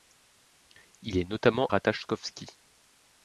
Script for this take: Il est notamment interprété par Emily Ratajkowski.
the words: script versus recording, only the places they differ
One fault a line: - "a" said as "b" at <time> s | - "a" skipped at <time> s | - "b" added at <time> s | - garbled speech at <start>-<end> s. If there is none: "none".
- "interprété par Emily" skipped at 1.7 s